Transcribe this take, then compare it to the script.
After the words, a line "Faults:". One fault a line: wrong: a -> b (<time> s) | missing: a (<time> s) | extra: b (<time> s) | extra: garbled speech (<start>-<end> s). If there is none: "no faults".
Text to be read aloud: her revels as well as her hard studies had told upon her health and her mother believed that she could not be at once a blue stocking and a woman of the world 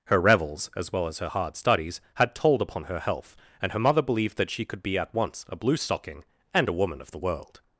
her revels as well as her hard studies had told upon her health and her mother believed that she could be at once a blue stocking and a woman of the world
Faults:
missing: not (4.8 s)